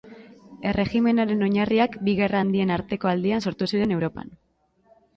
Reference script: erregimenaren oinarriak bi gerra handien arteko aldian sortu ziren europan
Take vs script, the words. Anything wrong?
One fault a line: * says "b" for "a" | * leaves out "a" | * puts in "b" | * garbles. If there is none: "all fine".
all fine